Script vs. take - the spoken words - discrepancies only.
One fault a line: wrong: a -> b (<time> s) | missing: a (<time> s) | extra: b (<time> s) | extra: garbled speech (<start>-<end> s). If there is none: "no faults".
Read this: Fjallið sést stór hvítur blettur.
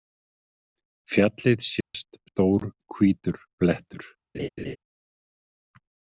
no faults